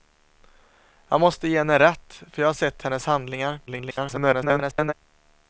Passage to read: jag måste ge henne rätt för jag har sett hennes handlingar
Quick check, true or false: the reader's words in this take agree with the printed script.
false